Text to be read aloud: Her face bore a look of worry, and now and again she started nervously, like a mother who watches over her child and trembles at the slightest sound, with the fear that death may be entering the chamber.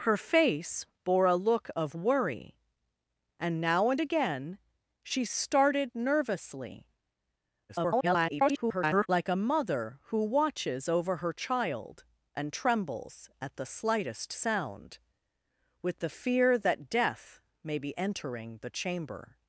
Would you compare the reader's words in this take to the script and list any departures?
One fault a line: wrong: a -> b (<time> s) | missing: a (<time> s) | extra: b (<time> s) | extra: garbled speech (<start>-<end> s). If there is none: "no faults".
extra: garbled speech (7.7-9.1 s)